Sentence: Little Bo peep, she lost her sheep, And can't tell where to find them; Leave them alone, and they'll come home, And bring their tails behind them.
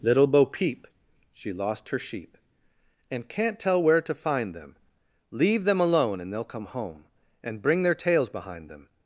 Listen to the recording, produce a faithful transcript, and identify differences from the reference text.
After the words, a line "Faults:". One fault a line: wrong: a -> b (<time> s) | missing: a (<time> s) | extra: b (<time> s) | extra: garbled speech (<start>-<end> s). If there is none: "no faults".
Little Bo peep, she lost her sheep, And can't tell where to find them; Leave them alone, and they'll come home, And bring their tails behind them.
Faults:
no faults